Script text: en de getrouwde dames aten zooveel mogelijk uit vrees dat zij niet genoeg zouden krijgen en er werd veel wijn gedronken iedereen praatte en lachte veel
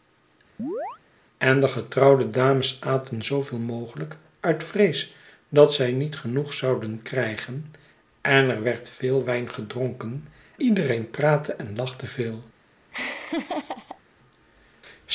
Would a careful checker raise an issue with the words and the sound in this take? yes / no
yes